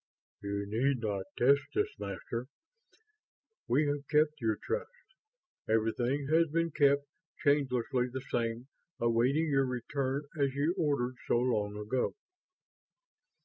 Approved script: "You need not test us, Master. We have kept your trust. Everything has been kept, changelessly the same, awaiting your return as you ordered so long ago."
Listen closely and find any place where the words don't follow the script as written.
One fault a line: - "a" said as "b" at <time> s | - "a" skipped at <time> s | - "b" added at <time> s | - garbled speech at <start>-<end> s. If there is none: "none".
none